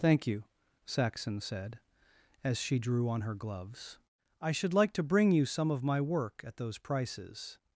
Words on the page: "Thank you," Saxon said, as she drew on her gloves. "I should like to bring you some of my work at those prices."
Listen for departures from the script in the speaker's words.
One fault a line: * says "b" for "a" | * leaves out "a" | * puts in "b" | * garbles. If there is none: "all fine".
all fine